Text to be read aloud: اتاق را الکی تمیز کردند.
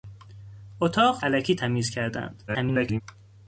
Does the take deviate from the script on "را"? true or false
true